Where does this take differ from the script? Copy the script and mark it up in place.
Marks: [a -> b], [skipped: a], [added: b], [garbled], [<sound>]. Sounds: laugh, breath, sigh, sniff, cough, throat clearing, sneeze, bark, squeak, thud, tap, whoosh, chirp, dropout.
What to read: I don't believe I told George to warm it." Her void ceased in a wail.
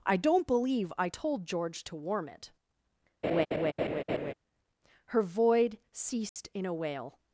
I don't believe I told George to warm it." [laugh] Her void ceased [dropout] in a wail.